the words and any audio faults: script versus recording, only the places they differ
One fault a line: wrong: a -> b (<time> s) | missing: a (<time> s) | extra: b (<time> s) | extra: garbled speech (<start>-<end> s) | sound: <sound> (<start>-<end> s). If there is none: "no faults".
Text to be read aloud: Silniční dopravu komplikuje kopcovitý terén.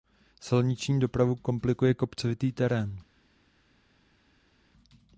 no faults